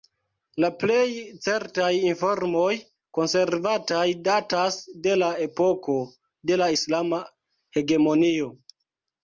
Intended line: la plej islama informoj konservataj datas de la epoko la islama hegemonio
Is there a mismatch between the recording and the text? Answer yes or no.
yes